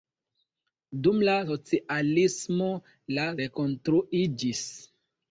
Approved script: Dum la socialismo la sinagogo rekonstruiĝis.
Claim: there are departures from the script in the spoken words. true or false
true